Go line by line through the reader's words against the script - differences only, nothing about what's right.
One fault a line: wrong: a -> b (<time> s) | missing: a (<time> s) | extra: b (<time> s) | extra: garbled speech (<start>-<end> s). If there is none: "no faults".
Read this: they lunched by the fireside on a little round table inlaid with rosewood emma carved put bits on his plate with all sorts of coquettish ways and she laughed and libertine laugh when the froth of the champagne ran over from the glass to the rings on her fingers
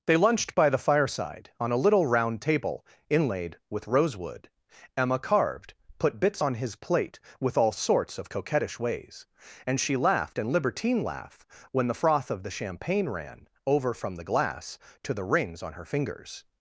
no faults